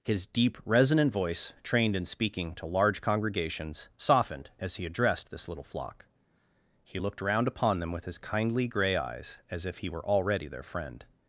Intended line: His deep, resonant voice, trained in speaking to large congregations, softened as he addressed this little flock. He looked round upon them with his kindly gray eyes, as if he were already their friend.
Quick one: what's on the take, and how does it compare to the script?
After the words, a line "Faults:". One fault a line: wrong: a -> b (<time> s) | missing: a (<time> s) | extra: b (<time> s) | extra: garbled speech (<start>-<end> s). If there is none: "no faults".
His deep, resonant voice, trained in speaking to large congregations, softened as he addressed this little flock. He looked round upon them with his kindly gray eyes, as if he were already their friend.
Faults:
no faults